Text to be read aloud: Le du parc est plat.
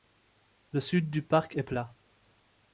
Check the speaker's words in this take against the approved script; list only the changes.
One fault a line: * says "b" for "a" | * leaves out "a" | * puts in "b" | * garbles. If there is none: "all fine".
* puts in "sud"